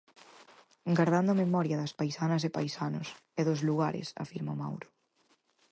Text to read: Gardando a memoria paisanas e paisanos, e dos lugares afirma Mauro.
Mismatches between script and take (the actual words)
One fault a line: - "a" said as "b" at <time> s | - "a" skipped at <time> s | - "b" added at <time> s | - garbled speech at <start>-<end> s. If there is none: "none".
- "das" added at 1.8 s